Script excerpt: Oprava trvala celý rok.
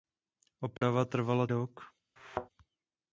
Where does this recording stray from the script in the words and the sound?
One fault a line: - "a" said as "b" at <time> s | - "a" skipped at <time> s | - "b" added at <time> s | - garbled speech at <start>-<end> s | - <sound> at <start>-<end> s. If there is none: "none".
- dropout at 0.8-0.8 s
- "celý" skipped at 1.4 s
- thud at 2.2-2.5 s